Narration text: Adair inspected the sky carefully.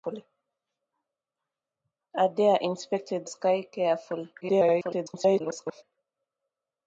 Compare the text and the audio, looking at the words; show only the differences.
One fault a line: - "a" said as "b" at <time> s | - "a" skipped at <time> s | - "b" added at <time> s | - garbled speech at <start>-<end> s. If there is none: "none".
- "the" skipped at 3.3 s
- garbled speech at 4.4-5.8 s